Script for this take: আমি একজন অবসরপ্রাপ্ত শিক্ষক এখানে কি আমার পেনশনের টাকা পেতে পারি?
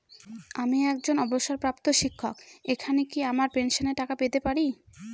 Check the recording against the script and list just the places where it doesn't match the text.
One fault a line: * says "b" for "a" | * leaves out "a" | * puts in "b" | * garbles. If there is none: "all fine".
all fine